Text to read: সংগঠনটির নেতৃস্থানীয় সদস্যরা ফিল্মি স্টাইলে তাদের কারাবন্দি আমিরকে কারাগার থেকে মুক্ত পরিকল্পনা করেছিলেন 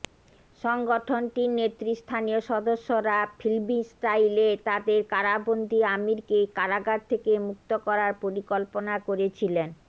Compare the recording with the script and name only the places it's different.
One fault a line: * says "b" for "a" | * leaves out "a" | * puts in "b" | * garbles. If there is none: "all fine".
* puts in "করার"